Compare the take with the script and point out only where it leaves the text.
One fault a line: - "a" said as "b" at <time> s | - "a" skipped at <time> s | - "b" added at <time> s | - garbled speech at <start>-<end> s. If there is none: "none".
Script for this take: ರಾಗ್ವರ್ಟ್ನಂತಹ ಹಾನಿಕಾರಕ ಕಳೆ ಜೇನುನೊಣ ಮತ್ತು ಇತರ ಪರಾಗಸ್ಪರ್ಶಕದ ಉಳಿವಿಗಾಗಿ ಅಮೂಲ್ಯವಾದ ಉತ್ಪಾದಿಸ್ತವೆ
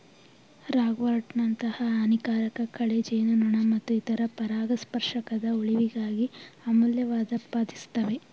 none